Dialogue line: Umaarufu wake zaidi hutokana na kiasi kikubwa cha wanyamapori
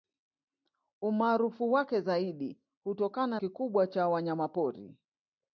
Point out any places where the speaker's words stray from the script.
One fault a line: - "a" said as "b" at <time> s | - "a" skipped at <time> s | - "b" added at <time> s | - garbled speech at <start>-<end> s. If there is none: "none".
- "na kiasi" skipped at 3.4 s